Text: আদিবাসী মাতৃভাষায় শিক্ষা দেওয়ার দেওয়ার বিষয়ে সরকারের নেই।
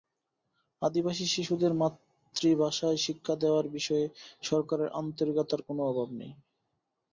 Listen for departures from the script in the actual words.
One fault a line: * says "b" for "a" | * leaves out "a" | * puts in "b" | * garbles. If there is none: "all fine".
* puts in "শিশুদের"
* leaves out "দেওয়ার"
* puts in "আন্তরিকতার কোনো অভাব"